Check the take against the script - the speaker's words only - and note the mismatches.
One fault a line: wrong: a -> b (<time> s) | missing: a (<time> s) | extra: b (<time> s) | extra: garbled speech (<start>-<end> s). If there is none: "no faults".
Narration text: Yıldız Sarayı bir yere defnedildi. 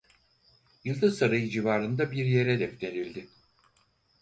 extra: civarında (1.5 s)